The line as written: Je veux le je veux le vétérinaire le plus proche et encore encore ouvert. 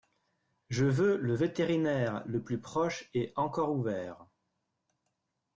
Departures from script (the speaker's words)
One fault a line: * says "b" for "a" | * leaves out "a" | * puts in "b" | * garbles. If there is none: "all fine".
* leaves out "je veux le"
* leaves out "encore"